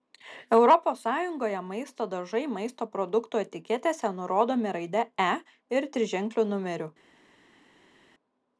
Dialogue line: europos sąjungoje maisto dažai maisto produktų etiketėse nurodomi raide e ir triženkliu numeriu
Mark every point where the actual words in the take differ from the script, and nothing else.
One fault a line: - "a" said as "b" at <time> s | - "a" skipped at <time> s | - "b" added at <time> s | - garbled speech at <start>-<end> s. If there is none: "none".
none